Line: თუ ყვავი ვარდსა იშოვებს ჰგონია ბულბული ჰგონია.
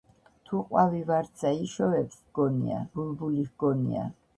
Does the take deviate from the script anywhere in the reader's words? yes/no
no